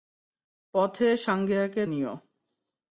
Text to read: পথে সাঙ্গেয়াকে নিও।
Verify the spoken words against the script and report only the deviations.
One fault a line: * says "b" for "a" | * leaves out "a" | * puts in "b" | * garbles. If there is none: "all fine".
all fine